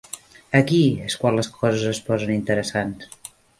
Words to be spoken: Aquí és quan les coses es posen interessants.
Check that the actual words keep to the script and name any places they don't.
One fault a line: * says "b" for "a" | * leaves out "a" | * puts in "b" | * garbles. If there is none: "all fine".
all fine